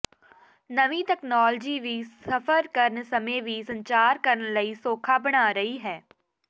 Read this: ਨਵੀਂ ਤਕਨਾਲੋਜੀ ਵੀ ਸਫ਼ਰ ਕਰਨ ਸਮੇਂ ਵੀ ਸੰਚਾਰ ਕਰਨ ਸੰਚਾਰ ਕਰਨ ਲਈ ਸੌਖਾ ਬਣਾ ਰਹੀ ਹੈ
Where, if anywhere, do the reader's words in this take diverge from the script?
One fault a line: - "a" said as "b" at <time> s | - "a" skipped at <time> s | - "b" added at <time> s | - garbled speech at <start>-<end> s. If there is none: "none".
- "ਸੰਚਾਰ ਕਰਨ" skipped at 4.5 s